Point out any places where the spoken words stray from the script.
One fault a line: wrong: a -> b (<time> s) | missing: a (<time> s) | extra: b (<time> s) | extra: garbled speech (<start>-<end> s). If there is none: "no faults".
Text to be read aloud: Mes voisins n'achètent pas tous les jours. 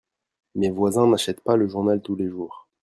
extra: le journal (1.6 s)